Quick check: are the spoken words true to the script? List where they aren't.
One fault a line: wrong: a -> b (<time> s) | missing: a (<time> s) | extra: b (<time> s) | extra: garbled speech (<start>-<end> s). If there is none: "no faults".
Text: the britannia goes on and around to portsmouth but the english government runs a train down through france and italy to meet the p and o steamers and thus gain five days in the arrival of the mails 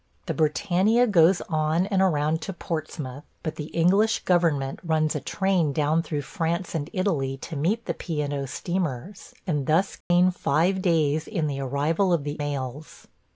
no faults